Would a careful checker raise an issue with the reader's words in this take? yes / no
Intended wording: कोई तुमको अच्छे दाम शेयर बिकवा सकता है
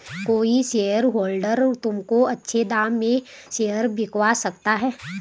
yes